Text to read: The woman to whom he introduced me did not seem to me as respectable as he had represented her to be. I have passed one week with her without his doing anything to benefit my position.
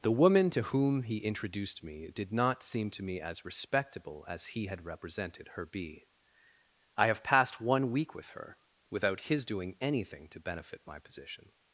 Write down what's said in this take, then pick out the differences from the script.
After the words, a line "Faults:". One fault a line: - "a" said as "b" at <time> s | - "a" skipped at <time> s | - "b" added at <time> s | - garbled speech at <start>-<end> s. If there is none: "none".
The woman to whom he introduced me did not seem to me as respectable as he had represented her be. I have passed one week with her without his doing anything to benefit my position.
Faults:
- "to" skipped at 5.7 s